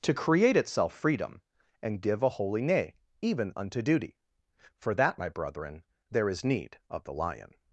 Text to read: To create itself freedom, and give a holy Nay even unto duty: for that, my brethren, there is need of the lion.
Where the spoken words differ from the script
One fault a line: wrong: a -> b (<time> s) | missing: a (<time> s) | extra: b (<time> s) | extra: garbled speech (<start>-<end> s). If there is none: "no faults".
no faults